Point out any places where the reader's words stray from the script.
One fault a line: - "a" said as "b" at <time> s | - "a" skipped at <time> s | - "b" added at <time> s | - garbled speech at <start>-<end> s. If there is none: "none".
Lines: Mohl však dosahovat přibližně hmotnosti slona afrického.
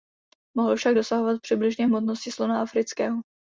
none